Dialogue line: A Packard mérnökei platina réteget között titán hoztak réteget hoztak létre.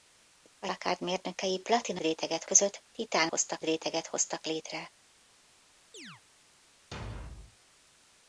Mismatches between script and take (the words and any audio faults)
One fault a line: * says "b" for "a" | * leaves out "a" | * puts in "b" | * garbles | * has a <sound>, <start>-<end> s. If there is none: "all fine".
* has a chirp, 5.9-6.2 s
* has a thud, 6.9-7.6 s